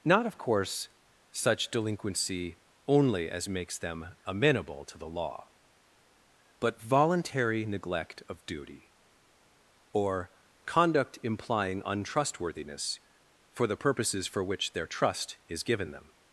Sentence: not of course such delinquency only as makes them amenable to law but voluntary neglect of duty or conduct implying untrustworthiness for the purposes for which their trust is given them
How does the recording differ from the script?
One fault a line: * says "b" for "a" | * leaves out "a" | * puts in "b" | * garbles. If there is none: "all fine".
* puts in "the"